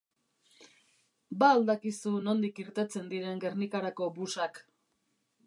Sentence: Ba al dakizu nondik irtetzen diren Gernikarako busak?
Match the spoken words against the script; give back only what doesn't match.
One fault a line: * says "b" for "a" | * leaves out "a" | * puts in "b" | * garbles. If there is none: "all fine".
all fine